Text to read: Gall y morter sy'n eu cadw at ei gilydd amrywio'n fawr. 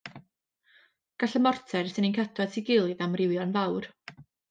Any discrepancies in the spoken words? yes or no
no